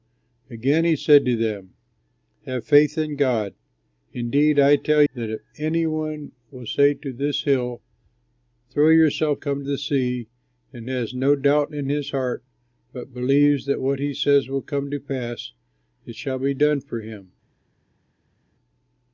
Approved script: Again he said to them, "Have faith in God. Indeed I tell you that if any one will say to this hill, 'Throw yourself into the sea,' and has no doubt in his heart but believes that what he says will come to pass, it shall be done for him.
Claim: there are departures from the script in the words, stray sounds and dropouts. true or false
true